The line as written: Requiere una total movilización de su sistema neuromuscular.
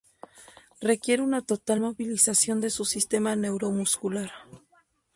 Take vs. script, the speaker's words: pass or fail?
pass